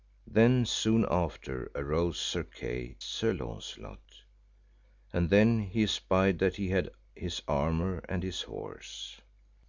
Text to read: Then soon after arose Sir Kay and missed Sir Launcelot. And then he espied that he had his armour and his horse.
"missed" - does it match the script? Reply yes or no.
no